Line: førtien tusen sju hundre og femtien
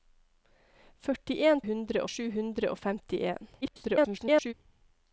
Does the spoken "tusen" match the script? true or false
false